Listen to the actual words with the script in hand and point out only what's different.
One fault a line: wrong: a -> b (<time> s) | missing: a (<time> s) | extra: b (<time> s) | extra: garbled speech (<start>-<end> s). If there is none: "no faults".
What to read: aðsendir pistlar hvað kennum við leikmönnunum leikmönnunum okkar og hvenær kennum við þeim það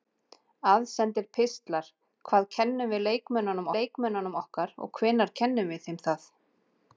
no faults